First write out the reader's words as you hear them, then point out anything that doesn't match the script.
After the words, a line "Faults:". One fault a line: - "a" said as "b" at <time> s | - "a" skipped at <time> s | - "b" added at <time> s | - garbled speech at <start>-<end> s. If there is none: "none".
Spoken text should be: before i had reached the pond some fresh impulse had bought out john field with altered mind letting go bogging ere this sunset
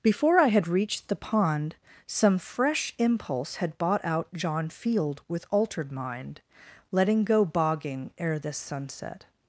before i had reached the pond some fresh impulse had bought out john field with altered mind letting go bogging ere this sunset
Faults:
none